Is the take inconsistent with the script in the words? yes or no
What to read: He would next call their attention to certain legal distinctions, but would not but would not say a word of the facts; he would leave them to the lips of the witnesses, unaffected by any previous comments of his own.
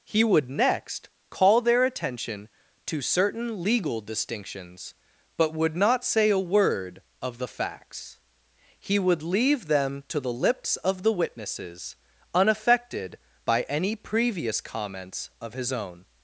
yes